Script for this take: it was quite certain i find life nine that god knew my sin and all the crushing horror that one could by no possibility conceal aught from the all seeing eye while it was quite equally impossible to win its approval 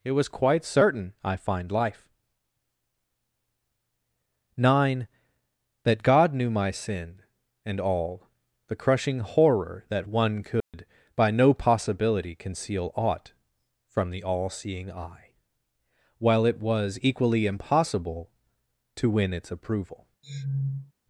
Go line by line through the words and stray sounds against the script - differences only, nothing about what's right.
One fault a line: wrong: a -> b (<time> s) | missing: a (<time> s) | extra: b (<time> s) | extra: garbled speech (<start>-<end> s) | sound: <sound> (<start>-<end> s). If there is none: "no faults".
sound: dropout (10.6-10.7 s)
missing: quite (17.0 s)
sound: sniff (20.2-20.9 s)